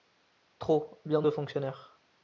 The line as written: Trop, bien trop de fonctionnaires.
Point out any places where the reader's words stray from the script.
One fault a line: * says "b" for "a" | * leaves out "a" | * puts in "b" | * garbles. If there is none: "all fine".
* leaves out "trop"